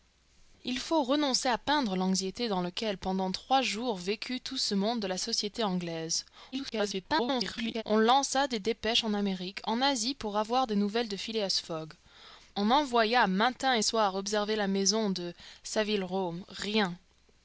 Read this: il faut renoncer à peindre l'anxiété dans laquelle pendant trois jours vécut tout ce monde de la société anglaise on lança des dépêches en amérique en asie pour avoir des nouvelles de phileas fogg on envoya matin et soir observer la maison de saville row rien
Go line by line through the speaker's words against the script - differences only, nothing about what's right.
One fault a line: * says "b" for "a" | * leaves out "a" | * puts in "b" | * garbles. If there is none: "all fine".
* garbles